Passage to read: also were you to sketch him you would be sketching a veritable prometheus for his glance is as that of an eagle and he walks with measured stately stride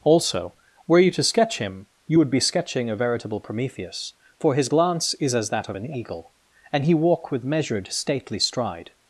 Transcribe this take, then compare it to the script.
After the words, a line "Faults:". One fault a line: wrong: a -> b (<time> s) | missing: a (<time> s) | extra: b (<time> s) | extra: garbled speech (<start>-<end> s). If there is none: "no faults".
also were you to sketch him you would be sketching a veritable prometheus for his glance is as that of an eagle and he walk with measured stately stride
Faults:
wrong: walks -> walk (6.9 s)